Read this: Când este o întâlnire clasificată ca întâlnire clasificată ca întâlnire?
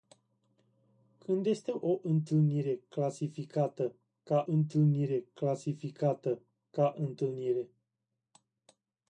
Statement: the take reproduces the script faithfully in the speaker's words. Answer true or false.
true